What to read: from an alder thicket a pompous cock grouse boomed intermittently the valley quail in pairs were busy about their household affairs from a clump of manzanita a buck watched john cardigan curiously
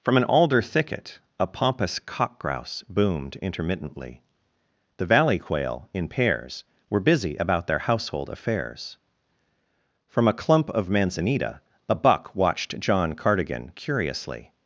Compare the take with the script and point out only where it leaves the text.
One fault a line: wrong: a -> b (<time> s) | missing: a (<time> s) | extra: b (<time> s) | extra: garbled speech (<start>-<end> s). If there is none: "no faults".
no faults